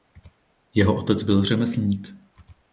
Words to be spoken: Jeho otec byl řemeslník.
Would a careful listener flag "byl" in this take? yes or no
no